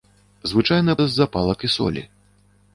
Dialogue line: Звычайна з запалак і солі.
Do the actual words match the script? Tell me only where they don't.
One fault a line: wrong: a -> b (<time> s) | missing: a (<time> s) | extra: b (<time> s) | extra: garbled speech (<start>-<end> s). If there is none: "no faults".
no faults